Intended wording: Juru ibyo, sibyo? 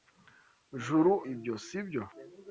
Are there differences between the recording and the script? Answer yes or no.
no